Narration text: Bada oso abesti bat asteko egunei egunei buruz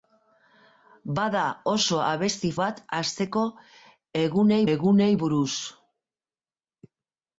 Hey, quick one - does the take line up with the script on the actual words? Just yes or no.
yes